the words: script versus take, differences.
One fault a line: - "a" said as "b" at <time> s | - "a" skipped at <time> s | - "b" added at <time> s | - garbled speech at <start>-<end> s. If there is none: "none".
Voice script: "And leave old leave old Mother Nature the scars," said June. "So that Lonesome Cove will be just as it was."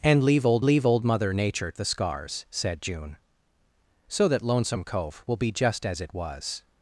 none